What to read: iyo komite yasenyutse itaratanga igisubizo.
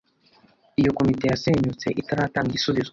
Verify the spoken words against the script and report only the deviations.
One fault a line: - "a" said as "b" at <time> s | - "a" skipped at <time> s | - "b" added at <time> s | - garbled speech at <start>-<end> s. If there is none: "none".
none